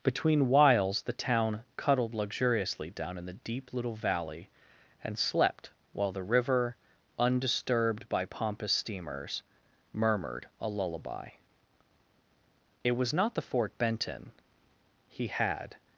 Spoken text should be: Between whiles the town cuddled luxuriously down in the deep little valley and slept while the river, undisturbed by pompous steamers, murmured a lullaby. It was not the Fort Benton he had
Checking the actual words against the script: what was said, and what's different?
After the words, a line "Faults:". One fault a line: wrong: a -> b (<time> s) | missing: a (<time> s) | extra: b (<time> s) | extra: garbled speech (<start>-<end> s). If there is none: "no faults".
Between whiles the town cuddled luxuriously down in the deep little valley and slept while the river, undisturbed by pompous steamers, murmured a lullaby. It was not the Fort Benton he had
Faults:
no faults